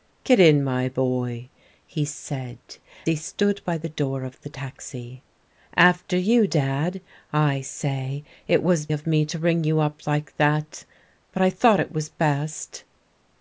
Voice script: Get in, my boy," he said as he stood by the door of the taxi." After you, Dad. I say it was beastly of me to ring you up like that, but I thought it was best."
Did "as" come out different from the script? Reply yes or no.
yes